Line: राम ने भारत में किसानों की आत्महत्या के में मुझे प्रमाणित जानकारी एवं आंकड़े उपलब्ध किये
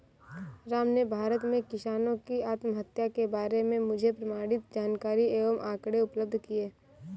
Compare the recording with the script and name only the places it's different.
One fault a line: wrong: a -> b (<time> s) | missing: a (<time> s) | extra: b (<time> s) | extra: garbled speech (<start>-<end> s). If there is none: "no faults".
extra: बारे (3.4 s)